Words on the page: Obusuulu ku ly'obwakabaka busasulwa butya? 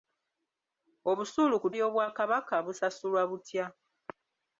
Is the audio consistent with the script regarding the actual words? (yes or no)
yes